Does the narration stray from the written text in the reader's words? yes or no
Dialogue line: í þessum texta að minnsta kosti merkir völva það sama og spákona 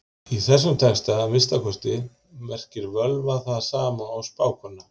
no